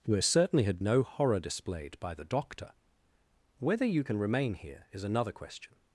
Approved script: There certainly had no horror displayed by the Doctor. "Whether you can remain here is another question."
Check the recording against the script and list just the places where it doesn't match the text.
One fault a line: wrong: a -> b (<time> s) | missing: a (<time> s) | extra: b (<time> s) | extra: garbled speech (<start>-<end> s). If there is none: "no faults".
no faults